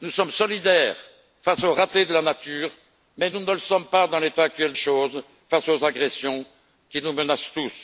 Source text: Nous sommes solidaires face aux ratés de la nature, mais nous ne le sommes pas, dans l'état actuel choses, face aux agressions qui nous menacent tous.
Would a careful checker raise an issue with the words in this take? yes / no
no